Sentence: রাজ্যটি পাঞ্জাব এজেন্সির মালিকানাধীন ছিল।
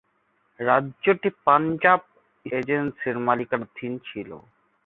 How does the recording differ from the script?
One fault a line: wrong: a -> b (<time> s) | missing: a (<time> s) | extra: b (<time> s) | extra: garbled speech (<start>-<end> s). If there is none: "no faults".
no faults